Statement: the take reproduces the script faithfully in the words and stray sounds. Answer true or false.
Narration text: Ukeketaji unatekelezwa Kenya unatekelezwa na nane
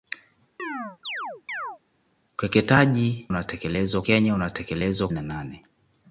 false